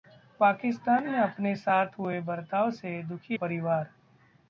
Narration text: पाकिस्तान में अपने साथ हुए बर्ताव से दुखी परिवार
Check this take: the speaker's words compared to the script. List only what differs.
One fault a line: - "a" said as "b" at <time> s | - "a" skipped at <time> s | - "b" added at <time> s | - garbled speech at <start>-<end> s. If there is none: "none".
none